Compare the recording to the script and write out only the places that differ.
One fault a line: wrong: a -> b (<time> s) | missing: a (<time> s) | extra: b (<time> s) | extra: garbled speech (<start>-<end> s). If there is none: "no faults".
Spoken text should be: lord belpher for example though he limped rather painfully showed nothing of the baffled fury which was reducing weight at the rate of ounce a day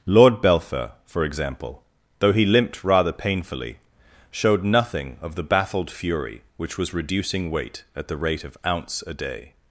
no faults